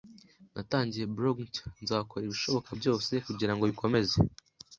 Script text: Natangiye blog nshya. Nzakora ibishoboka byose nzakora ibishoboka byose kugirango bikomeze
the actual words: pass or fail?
fail